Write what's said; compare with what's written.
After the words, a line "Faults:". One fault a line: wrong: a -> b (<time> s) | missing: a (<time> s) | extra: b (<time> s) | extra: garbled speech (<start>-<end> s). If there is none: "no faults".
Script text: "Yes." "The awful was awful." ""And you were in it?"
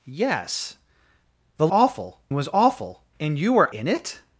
"Yes." "The awful was awful." ""And you were in it?"
Faults:
no faults